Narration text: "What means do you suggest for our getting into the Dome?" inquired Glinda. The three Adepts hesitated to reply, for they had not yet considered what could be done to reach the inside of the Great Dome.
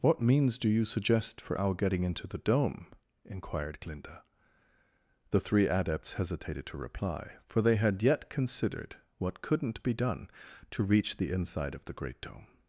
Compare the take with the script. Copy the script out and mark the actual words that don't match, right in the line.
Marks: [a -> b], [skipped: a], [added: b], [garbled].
"What means do you suggest for our getting into the Dome?" inquired Glinda. The three Adepts hesitated to reply, for they had [skipped: not] yet considered what [could -> couldn't] be done to reach the inside of the Great Dome.